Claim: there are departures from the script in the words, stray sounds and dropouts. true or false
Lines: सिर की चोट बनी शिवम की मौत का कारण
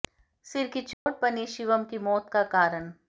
true